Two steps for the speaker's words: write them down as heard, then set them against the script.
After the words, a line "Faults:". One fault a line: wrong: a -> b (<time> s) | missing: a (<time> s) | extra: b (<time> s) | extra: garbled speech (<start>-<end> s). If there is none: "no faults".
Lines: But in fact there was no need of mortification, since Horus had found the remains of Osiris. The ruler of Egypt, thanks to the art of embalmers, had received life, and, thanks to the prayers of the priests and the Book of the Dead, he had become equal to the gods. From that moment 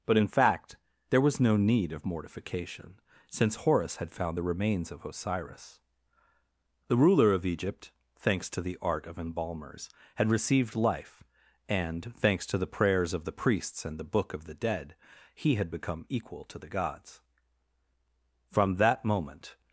But in fact there was no need of mortification, since Horus had found the remains of Osiris. The ruler of Egypt, thanks to the art of embalmers, had received life, and, thanks to the prayers of the priests and the Book of the Dead, he had become equal to the gods. From that moment
Faults:
no faults